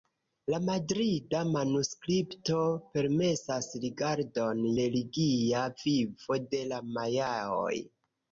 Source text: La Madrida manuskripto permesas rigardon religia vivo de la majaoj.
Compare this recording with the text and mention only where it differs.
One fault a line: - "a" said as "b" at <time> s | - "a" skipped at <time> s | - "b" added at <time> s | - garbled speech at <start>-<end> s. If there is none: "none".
none